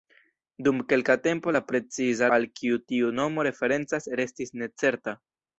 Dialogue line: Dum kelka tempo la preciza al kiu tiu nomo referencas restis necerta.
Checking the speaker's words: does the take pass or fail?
pass